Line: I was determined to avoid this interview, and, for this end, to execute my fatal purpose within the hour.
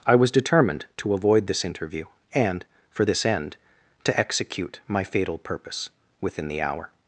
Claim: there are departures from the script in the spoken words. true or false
false